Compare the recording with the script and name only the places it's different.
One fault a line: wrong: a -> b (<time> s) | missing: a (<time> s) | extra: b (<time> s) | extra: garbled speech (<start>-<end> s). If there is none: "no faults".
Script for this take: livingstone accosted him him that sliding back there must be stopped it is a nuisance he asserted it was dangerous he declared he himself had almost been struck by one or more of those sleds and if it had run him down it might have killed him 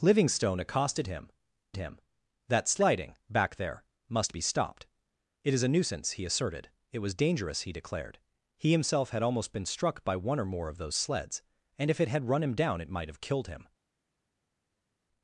no faults